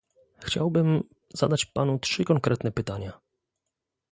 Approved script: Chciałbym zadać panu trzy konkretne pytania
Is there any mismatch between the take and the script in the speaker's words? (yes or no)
no